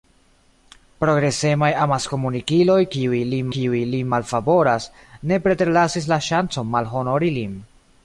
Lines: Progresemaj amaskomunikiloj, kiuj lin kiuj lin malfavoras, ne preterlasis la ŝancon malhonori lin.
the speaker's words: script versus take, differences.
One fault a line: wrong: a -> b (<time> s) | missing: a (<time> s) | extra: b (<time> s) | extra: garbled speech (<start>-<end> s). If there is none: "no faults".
no faults